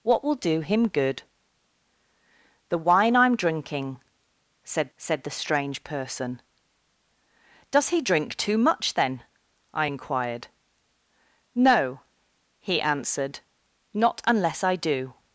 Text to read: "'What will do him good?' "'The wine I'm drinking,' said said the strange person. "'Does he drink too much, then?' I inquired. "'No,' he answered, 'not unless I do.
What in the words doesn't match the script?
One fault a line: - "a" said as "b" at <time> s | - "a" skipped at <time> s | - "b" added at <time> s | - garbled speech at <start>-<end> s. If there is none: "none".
none